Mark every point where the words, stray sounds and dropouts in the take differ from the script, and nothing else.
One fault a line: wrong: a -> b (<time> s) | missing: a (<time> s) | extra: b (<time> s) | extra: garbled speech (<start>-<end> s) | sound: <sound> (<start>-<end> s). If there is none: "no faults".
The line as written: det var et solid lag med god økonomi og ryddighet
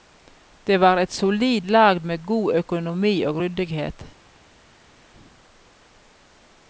no faults